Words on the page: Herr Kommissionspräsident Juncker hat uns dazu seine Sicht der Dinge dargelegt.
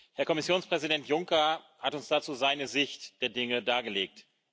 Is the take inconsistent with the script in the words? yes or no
no